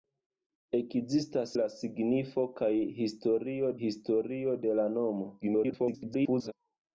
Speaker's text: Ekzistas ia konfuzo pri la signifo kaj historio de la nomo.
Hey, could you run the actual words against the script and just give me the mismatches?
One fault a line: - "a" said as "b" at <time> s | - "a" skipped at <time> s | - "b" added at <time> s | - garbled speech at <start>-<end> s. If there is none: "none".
- "ia konfuzo pri" skipped at 1.5 s
- "historio" added at 3.8 s
- garbled speech at 5.4-6.5 s